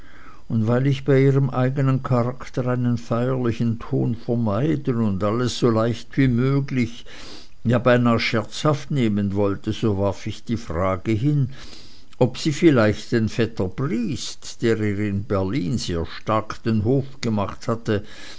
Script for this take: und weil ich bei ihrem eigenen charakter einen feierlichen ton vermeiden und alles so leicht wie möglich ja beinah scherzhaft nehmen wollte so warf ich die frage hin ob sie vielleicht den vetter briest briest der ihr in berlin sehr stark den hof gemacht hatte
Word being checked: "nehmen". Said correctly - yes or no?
yes